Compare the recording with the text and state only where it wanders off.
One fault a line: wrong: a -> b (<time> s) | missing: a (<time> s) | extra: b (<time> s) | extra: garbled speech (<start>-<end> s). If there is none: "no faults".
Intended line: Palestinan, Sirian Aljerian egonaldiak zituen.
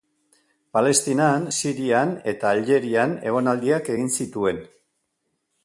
extra: eta (2.3 s)
extra: egin (3.9 s)